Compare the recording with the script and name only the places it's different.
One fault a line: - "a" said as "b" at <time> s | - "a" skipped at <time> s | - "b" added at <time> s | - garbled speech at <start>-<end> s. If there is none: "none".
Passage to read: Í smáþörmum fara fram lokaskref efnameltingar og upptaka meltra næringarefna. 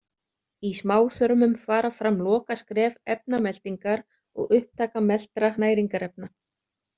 none